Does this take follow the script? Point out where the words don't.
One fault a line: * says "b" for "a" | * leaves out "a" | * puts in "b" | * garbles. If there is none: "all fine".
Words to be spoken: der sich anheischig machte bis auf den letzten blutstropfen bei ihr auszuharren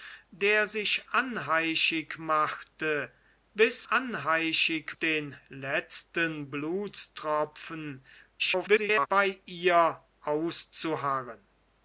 * says "anheischig" for "auf"
* garbles